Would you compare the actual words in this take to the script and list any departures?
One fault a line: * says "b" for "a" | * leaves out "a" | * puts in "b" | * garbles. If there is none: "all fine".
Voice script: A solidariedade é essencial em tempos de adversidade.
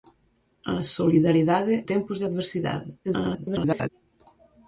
* leaves out "é essencial em"
* garbles